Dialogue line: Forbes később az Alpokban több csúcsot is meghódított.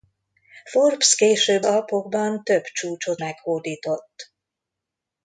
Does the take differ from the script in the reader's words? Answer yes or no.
yes